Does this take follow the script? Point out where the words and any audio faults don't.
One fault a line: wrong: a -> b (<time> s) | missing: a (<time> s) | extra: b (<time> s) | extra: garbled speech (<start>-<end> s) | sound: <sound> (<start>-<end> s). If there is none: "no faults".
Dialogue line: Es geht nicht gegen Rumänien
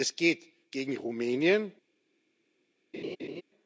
missing: nicht (0.4 s)
sound: laugh (2.9-3.4 s)